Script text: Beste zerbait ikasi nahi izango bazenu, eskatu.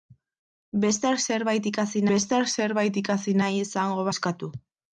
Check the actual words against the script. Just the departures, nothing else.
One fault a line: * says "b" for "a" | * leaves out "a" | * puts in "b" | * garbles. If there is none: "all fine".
* puts in "beste zerbait ikasi"
* leaves out "bazenu"